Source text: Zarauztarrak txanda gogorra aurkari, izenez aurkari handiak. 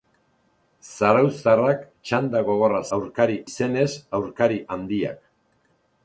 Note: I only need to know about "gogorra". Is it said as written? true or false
true